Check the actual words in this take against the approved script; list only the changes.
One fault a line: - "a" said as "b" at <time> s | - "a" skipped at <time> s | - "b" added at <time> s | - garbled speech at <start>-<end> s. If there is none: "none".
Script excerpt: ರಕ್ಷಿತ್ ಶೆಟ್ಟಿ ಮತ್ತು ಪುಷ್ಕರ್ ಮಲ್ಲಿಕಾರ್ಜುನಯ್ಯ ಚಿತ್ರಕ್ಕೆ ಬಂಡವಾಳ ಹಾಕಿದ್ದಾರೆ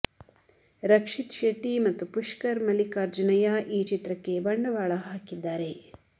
- "ಈ" added at 3.7 s